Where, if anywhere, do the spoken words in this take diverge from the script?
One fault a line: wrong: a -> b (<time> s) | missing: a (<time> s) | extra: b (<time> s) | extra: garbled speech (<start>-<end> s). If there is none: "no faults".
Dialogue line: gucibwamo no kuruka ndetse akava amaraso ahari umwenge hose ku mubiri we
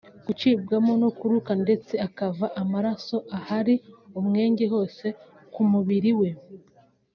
no faults